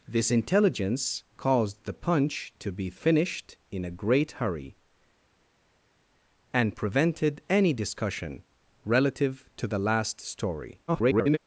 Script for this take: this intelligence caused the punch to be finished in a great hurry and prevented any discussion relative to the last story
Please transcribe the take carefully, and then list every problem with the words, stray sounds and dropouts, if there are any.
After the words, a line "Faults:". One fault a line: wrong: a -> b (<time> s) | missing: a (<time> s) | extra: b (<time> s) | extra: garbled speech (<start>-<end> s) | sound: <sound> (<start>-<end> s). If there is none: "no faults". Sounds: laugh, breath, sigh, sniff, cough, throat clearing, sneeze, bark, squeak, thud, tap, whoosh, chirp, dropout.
this intelligence caused the punch to be finished in a great hurry and prevented any discussion relative to the last story [garbled]
Faults:
extra: garbled speech (10.9-11.4 s)